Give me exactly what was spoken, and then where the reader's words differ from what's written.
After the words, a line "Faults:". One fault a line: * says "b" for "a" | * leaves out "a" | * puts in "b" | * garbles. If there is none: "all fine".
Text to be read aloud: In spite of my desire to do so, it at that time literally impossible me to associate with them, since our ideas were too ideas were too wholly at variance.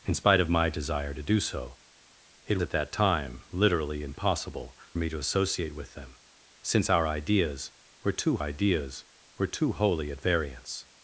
In spite of my desire to do so, it at that time literally impossible me to associate with them, since our ideas were too ideas were too wholly at variance.
Faults:
all fine